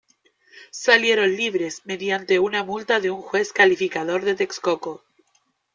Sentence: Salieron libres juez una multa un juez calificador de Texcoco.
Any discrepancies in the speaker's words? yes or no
yes